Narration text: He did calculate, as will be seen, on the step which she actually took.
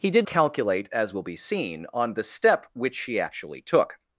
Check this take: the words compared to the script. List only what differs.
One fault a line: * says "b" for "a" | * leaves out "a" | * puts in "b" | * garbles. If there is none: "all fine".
all fine